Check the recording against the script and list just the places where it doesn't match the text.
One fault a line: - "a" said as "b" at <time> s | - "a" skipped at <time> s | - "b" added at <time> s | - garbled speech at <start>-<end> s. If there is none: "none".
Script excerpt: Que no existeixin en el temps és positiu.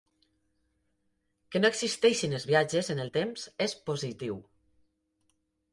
- "els viatges" added at 2.4 s